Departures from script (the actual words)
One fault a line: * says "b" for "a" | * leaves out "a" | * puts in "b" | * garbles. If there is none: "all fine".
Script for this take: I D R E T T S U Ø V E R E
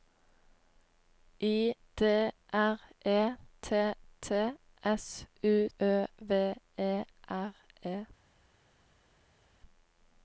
all fine